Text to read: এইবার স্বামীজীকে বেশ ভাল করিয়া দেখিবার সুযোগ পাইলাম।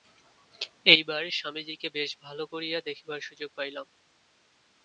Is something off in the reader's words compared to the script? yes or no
no